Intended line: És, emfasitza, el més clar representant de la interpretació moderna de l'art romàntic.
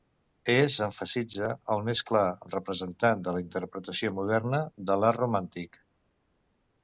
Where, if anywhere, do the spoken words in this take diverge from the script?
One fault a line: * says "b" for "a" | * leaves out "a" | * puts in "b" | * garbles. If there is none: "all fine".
all fine